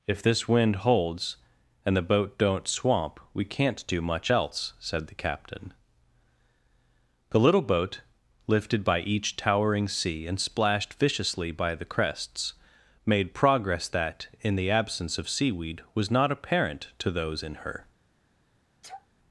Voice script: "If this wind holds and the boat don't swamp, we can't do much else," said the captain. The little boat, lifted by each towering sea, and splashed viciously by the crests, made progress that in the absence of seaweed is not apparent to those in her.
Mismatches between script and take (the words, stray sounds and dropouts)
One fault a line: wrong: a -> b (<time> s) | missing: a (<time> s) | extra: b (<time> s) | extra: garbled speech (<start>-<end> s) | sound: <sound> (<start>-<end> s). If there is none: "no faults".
wrong: is -> was (15.9 s)
sound: sneeze (18.8-19.1 s)